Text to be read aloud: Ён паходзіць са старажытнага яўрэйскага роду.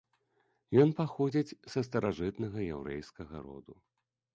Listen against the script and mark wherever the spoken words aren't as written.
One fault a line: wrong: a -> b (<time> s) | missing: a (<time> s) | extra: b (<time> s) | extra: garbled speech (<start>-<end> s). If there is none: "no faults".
no faults